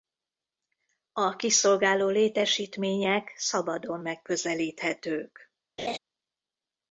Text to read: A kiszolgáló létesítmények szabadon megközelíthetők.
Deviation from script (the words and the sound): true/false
true